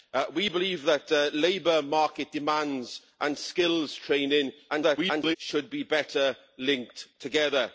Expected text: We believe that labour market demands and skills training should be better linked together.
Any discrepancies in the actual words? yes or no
yes